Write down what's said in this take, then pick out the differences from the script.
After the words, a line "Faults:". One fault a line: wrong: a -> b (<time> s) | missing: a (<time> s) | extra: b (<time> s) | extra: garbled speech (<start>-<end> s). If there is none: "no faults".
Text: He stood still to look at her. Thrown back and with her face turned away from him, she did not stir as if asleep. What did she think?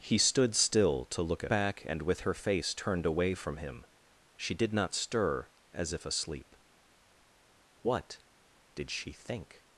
He stood still to look at back and with her face turned away from him, she did not stir as if asleep. What did she think?
Faults:
missing: her Thrown (1.5 s)